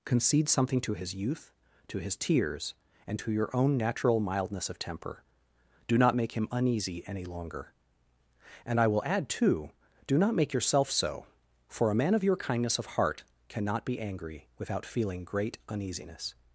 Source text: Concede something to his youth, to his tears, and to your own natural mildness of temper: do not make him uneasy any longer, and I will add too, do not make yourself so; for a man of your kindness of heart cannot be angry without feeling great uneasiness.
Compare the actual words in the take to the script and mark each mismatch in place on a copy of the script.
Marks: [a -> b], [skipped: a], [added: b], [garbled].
Concede something to his youth, to his tears, and to your own natural mildness of temper: do not make him uneasy any longer, and I will add too, do not make yourself so; for a man of your kindness of heart cannot be angry without feeling great uneasiness.